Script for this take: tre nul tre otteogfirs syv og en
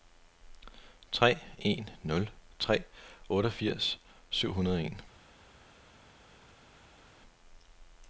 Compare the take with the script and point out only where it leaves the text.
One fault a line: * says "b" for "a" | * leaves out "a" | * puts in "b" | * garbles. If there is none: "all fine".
* puts in "en"
* puts in "hundrede"